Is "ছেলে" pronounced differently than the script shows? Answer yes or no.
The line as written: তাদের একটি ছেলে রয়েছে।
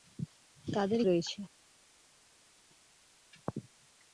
yes